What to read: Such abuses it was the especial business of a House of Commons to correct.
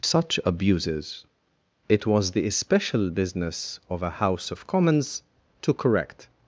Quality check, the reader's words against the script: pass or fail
pass